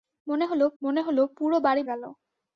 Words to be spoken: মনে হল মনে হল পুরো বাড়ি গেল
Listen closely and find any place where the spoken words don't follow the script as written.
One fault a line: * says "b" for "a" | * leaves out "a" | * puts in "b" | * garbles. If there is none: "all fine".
all fine